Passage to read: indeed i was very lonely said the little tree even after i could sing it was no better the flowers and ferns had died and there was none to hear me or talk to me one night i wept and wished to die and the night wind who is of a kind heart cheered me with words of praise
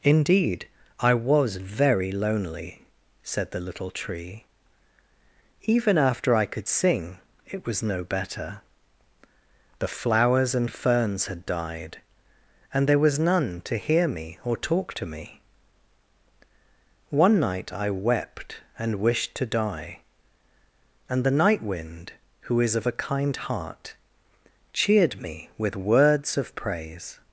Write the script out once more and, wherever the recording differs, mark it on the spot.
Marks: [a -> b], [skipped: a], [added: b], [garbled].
indeed i was very lonely said the little tree even after i could sing it was no better the flowers and ferns had died and there was none to hear me or talk to me one night i wept and wished to die and the night wind who is of a kind heart cheered me with words of praise